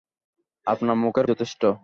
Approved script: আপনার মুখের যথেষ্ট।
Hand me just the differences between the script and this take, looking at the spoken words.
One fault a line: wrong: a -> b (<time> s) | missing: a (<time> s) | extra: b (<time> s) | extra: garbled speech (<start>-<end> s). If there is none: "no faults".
no faults